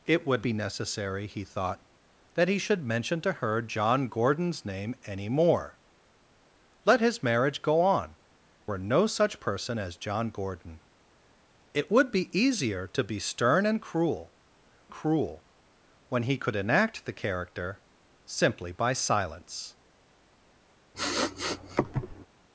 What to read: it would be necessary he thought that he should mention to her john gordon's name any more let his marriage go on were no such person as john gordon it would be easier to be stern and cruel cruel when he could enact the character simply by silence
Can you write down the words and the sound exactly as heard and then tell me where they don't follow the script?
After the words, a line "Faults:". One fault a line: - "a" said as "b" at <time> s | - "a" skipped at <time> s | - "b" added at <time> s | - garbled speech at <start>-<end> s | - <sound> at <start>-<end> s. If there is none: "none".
it would be necessary he thought that he should mention to her john gordon's name any more let his marriage go on were no such person as john gordon it would be easier to be stern and cruel cruel when he could enact the character simply by silence
Faults:
- sniff at 20.9-22.3 s